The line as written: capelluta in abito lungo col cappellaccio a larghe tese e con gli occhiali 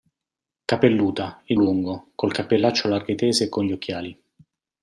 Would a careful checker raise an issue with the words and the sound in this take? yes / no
yes